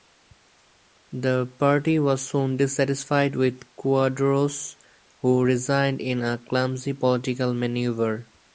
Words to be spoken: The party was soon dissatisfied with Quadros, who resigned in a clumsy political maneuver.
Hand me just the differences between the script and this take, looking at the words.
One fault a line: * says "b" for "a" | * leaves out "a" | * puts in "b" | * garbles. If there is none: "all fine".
all fine